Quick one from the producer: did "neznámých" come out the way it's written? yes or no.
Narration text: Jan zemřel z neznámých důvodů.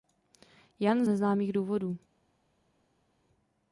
yes